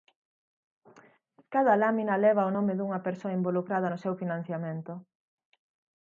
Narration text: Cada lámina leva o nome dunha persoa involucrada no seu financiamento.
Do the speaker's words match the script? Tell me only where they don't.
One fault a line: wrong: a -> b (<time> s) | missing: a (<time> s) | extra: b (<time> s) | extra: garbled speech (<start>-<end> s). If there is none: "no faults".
no faults